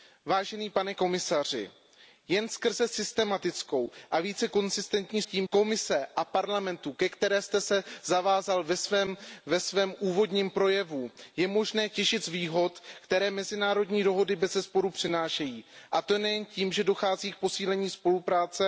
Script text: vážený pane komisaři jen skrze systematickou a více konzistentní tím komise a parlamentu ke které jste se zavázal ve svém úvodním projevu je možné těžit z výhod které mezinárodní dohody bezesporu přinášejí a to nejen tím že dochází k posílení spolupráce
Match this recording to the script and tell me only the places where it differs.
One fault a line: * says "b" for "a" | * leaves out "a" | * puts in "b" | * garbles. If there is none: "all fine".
all fine